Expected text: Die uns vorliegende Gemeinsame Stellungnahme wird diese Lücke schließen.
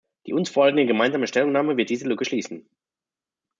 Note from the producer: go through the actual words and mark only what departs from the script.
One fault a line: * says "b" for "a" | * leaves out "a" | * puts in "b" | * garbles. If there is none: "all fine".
all fine